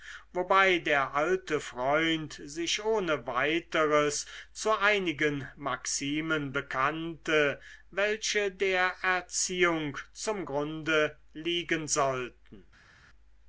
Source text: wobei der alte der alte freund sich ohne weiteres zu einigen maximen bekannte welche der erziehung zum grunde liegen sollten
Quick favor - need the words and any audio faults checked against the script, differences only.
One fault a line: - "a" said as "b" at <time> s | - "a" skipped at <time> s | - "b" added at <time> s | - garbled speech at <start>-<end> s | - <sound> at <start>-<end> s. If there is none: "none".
- "der alte" skipped at 1.6 s